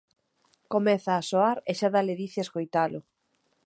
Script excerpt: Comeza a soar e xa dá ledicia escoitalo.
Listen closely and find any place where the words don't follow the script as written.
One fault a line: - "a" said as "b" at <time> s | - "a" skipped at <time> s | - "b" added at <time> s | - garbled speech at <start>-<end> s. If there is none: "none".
none